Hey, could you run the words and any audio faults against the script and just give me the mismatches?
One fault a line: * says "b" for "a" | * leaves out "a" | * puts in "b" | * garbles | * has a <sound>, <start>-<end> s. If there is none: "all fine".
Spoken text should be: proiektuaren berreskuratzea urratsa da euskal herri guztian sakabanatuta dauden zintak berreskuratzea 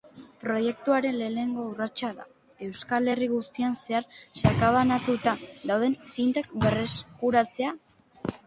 * says "lehenengo" for "berreskuratzea"
* puts in "zehar"